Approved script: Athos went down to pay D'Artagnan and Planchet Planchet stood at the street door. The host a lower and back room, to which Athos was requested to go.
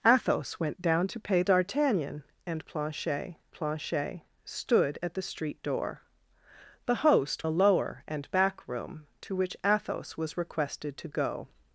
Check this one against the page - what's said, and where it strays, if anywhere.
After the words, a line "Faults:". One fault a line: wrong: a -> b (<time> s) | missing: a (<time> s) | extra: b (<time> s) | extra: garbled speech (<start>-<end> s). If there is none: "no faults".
Athos went down to pay D'Artagnan and Planchet Planchet stood at the street door. The host a lower and back room, to which Athos was requested to go.
Faults:
no faults